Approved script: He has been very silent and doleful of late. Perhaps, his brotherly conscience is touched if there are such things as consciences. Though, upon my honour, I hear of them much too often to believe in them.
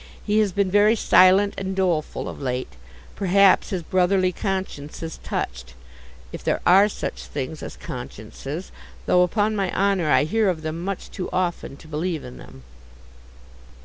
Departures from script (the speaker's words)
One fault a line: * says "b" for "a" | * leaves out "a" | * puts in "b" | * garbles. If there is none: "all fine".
all fine